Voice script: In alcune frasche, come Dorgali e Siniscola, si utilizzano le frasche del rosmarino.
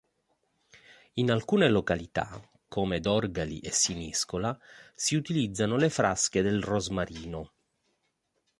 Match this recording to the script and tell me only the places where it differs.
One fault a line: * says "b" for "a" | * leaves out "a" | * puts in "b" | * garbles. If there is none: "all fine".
* says "località" for "frasche"